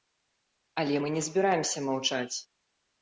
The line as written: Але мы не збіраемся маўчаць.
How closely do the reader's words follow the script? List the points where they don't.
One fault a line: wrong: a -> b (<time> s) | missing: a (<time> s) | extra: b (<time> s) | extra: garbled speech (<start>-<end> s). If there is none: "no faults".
no faults